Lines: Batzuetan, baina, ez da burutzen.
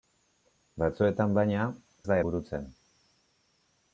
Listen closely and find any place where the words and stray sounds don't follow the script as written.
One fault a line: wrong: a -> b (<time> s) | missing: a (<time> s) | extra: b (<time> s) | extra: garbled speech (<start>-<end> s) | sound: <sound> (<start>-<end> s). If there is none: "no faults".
no faults